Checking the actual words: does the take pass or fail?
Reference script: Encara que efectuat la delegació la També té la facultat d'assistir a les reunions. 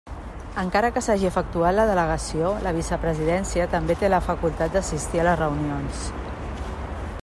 fail